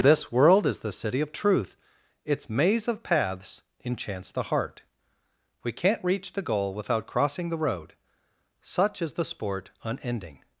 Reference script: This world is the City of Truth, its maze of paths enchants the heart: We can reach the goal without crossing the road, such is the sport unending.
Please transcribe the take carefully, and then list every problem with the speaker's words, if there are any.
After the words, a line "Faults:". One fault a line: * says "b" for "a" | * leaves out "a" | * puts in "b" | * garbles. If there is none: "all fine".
This world is the City of Truth, its maze of paths enchants the heart: We can't reach the goal without crossing the road, such is the sport unending.
Faults:
* says "can't" for "can"